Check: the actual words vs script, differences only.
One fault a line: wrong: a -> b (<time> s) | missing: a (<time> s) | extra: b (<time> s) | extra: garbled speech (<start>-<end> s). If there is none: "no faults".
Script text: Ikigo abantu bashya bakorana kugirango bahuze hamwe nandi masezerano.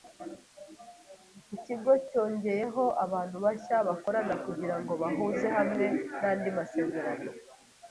extra: cyongeyeho (2.1 s)